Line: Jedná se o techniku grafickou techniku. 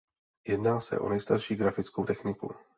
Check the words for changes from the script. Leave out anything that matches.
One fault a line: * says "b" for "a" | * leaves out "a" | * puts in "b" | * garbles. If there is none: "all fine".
* says "nejstarší" for "techniku"